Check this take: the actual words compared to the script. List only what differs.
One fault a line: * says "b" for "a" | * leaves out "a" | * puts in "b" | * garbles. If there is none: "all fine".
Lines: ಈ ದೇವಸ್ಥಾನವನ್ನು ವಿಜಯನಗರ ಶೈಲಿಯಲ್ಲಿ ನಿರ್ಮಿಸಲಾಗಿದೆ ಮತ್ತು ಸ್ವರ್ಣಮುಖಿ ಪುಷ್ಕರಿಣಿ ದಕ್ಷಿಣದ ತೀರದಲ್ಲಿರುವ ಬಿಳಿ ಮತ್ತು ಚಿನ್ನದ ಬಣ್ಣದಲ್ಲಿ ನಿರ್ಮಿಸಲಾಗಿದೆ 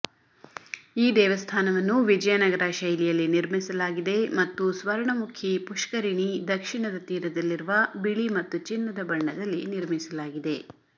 all fine